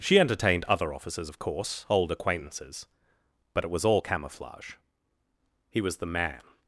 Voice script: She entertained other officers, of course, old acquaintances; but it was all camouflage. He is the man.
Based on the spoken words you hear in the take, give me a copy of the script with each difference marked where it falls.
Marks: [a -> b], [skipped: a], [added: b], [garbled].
She entertained other officers, of course, old acquaintances; but it was all camouflage. He [is -> was] the man.